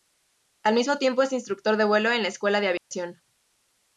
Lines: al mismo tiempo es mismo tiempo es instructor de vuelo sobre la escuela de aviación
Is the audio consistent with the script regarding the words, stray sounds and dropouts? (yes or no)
no